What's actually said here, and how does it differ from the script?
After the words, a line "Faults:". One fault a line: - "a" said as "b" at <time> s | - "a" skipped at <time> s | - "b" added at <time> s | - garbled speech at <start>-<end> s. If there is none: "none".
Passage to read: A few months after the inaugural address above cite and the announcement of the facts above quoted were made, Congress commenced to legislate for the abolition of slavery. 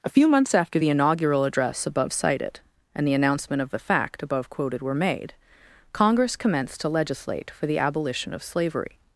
A few months after the inaugural address above cited and the announcement of the fact above quoted were made, Congress commenced to legislate for the abolition of slavery.
Faults:
- "cite" said as "cited" at 2.1 s
- "facts" said as "fact" at 3.8 s